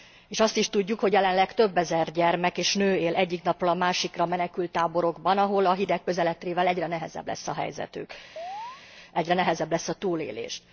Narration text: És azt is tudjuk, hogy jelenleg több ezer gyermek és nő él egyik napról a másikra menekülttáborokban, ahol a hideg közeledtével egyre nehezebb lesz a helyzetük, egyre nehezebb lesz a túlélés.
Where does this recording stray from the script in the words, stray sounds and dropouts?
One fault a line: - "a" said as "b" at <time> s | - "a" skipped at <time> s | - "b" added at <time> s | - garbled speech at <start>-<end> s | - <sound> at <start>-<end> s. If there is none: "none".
- chirp at 8.4-8.8 s